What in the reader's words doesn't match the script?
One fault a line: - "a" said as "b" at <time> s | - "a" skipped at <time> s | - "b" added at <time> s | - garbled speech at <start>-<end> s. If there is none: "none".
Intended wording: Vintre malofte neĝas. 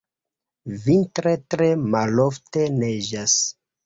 - "tre" added at 1.5 s